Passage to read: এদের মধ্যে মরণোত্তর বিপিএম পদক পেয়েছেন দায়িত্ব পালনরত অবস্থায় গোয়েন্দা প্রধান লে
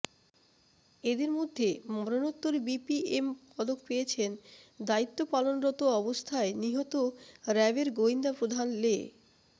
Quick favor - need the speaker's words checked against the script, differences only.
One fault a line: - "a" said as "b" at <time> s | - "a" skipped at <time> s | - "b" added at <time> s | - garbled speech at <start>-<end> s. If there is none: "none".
- "নিহত র্যাবের" added at 6.6 s